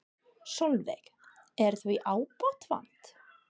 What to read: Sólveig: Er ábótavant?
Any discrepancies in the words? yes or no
yes